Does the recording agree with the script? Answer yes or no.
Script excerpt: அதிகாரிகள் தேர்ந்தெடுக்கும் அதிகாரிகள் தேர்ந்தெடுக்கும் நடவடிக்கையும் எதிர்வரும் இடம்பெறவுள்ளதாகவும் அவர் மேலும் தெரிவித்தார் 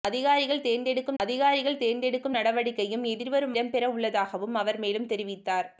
yes